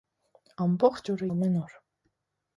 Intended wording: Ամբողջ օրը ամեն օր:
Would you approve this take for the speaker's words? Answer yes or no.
yes